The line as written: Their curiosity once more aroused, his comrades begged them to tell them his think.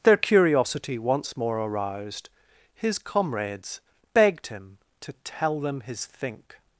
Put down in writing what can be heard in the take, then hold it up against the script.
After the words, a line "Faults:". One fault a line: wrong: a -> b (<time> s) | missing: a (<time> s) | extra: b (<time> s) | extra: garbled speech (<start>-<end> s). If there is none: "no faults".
Their curiosity once more aroused, his comrades begged him to tell them his think.
Faults:
wrong: them -> him (4.5 s)